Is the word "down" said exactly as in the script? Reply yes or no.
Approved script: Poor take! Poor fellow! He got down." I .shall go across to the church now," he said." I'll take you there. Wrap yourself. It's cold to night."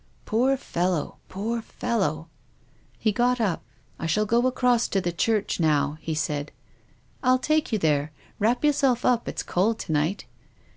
no